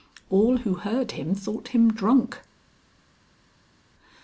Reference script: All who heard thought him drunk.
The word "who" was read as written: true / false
true